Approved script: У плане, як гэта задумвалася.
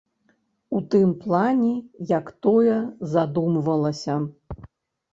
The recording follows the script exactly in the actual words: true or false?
false